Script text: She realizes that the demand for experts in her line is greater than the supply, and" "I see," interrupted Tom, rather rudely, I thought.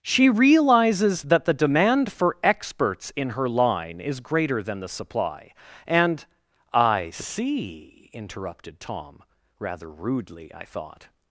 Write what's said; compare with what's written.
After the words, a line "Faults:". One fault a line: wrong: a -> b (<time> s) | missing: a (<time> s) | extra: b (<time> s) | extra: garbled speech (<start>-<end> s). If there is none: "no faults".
She realizes that the demand for experts in her line is greater than the supply, and" "I see," interrupted Tom, rather rudely, I thought.
Faults:
no faults